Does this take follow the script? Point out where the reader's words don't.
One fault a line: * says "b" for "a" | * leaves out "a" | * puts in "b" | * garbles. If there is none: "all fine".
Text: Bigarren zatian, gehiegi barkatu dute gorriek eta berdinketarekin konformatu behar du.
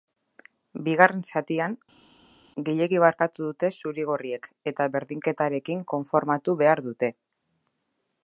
* puts in "zuri"
* says "dute" for "du"